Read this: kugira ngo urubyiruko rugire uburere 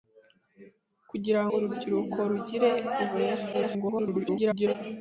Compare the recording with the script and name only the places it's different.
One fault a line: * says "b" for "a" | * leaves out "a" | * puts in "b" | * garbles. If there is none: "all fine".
* leaves out "ngo"
* garbles